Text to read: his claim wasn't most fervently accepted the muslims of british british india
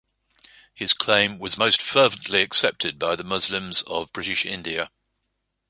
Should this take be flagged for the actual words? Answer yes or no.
yes